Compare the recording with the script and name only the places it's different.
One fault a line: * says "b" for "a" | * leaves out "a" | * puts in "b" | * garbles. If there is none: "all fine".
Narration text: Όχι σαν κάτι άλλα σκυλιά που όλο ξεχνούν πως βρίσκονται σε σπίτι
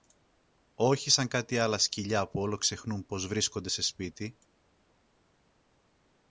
all fine